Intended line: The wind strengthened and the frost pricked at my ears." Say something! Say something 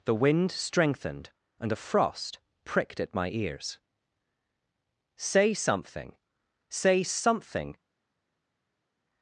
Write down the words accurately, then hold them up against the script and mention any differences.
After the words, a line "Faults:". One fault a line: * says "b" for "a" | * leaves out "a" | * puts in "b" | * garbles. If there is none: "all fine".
The wind strengthened and a frost pricked at my ears." Say something! Say something
Faults:
* says "a" for "the"